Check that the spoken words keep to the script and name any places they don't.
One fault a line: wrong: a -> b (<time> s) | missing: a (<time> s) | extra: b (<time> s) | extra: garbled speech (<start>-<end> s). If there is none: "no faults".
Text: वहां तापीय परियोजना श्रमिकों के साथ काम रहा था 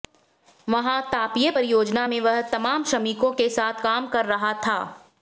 extra: में वह तमाम (2.1 s)
extra: कर (4.1 s)